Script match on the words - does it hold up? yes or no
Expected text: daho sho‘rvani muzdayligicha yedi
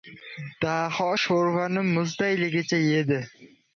yes